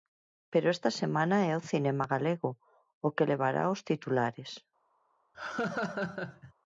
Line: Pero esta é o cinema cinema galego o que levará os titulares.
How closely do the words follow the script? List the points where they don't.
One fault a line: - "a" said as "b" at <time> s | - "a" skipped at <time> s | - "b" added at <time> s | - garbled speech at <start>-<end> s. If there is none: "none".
- "semana" added at 0.9 s
- "cinema" skipped at 2.0 s